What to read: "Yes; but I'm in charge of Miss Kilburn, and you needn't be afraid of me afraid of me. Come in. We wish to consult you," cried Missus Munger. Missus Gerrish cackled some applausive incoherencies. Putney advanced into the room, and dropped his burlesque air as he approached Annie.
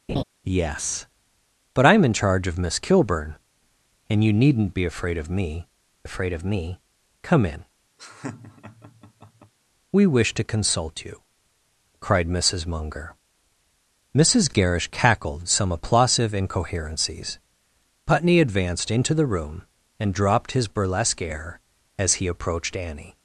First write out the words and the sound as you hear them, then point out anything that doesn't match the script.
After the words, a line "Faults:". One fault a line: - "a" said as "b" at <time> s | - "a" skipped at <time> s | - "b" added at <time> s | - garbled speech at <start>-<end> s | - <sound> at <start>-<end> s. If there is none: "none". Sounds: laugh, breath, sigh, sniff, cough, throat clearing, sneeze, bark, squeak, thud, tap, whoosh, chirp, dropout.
"Yes; but I'm in charge of Miss Kilburn, and you needn't be afraid of me afraid of me. Come in. We wish to consult you," cried Missus Munger. Missus Gerrish cackled some applausive incoherencies. Putney advanced into the room, and dropped his burlesque air as he approached Annie.
Faults:
- laugh at 0.1-0.2 s
- laugh at 8.0-9.5 s